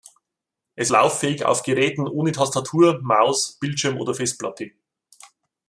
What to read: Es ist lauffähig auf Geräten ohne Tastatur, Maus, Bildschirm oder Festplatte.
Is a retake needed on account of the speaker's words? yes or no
yes